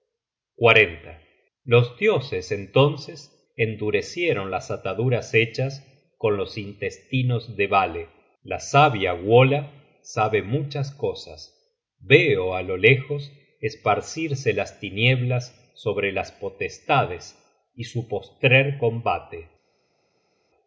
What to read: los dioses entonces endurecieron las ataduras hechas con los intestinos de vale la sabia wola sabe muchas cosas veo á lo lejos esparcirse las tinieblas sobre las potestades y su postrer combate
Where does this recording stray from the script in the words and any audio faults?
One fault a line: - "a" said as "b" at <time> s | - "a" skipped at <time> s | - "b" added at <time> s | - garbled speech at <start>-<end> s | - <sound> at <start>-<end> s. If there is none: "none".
none